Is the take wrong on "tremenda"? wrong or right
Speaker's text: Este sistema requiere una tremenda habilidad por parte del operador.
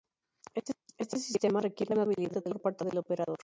wrong